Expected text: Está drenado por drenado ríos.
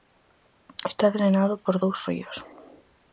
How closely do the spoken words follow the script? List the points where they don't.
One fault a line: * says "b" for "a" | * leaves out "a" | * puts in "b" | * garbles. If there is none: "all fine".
* says "dous" for "drenado"